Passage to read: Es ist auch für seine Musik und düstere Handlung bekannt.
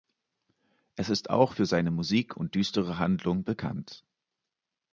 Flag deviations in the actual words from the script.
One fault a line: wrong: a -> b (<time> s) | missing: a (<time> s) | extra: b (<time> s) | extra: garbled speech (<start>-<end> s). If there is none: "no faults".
no faults